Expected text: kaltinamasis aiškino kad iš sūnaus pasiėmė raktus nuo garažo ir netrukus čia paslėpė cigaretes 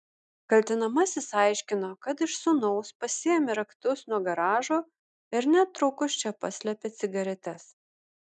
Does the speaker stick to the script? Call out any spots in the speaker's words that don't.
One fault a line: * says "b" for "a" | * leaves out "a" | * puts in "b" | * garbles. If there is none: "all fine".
all fine